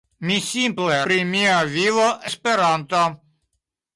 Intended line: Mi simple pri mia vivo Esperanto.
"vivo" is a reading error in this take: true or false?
false